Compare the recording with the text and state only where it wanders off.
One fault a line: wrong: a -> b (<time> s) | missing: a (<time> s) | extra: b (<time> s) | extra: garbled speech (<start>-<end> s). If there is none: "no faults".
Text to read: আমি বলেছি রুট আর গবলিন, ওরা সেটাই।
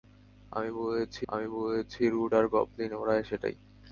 extra: আমি বলেছি (1.3 s)